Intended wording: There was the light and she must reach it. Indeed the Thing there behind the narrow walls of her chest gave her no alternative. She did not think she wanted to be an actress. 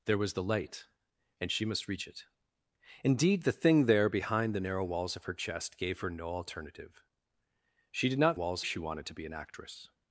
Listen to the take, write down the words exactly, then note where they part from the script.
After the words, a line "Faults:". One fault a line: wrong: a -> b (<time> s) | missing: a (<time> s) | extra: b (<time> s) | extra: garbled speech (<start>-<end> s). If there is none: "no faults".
There was the light and she must reach it. Indeed the Thing there behind the narrow walls of her chest gave her no alternative. She did not walls she wanted to be an actress.
Faults:
wrong: think -> walls (8.3 s)